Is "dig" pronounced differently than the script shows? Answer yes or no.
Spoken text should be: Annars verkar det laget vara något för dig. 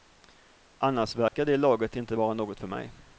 yes